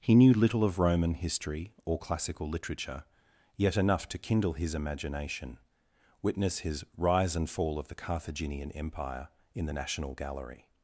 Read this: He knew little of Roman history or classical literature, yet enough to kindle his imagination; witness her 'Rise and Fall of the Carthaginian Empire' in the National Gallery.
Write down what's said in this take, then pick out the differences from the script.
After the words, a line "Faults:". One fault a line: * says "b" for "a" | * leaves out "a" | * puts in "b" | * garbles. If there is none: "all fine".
He knew little of Roman history or classical literature, yet enough to kindle his imagination; witness his 'Rise and Fall of the Carthaginian Empire' in the National Gallery.
Faults:
* says "his" for "her"